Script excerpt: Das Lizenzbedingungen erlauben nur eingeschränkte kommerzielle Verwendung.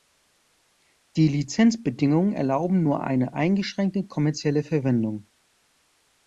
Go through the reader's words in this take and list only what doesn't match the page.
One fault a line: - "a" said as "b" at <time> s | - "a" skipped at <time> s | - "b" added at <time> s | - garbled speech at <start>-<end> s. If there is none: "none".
- "Das" said as "Die" at 1.1 s
- "eine" added at 3.0 s